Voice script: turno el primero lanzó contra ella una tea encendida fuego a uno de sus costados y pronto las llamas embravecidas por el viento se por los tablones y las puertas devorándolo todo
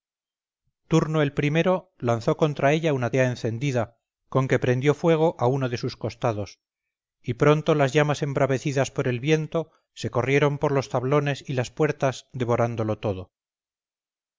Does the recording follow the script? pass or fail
fail